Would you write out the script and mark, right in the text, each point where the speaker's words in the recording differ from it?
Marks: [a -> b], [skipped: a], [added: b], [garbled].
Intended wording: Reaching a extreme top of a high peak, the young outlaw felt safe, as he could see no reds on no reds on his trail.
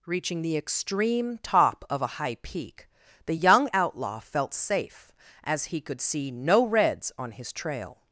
Reaching [a -> the] extreme top of a high peak, the young outlaw felt safe, as he could see no reds on [skipped: no reds on] his trail.